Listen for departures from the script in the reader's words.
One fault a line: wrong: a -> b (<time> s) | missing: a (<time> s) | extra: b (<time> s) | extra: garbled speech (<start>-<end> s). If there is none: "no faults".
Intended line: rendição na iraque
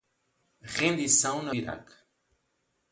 no faults